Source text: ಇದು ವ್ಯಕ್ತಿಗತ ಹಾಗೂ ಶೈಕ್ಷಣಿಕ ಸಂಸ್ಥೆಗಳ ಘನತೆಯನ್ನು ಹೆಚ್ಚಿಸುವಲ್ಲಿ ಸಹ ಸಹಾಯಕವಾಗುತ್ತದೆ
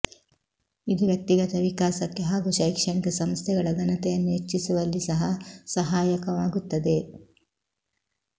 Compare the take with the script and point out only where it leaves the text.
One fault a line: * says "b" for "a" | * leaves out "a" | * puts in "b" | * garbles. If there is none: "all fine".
* puts in "ವಿಕಾಸಕ್ಕೆ"